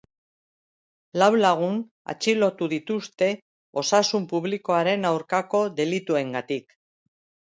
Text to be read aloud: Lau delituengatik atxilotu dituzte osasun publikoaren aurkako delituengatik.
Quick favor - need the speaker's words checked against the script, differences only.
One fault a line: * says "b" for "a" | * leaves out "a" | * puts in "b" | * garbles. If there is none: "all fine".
* says "lagun" for "delituengatik"